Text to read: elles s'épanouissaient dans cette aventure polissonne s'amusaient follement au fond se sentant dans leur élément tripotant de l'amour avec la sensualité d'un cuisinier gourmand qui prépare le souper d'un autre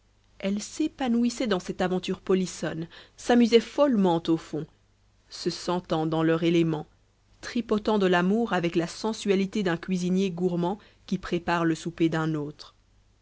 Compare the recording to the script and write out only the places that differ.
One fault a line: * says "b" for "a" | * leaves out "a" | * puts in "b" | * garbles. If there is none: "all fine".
all fine